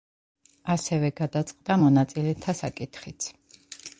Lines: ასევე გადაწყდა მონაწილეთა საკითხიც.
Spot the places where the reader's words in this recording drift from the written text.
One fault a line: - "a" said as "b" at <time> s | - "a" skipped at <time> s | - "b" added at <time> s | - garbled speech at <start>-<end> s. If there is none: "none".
none